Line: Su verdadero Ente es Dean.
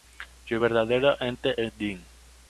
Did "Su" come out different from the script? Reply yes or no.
no